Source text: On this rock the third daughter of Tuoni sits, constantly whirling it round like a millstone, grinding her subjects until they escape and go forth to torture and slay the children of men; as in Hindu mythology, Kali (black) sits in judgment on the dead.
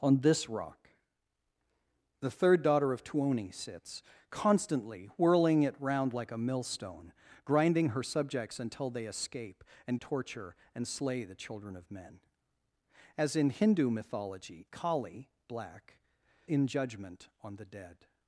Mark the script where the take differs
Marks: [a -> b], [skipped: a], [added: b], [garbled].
On this rock the third daughter of Tuoni sits, constantly whirling it round like a millstone, grinding her subjects until they escape and [skipped: go forth to] torture and slay the children of men; as in Hindu mythology, Kali (black) [skipped: sits] in judgment on the dead.